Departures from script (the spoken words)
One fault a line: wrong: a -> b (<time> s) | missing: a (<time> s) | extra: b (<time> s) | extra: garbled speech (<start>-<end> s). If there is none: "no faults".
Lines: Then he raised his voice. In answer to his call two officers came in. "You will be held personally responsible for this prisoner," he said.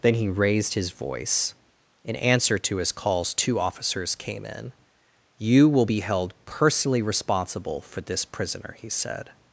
wrong: call -> calls (2.9 s)